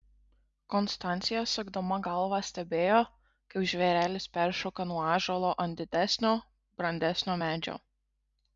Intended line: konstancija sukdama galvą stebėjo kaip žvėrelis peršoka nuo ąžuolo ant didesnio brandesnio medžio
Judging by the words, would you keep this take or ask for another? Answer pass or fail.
pass